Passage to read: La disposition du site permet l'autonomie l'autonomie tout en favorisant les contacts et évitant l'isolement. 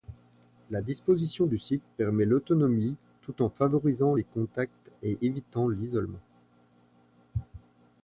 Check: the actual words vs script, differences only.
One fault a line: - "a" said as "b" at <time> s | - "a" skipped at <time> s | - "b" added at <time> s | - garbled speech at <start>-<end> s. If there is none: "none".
- "l'autonomie" skipped at 3.0 s